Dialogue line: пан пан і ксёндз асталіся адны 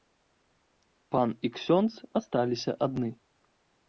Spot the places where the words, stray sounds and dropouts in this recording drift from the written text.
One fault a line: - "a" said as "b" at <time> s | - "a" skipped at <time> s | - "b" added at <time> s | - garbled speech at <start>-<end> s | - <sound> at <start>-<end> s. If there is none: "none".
- "пан" skipped at 1.3 s